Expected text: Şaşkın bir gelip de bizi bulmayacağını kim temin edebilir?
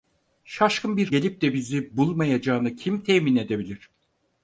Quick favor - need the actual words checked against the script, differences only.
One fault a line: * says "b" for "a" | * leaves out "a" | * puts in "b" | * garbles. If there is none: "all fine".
all fine